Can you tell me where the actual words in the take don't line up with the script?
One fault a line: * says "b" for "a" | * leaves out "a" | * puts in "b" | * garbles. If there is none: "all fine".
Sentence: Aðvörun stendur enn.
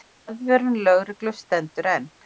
* puts in "lögreglu"